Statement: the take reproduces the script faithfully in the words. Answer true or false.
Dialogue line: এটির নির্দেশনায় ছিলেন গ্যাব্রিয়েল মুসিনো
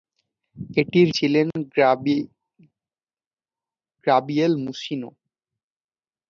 false